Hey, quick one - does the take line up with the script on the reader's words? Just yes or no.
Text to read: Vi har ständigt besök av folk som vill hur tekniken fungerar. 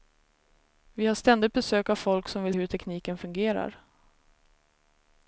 yes